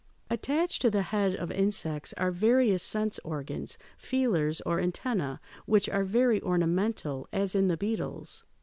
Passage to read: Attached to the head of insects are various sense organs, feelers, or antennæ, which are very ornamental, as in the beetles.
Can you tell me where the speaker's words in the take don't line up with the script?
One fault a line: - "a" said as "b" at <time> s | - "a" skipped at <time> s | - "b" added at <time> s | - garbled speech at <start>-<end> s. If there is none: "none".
none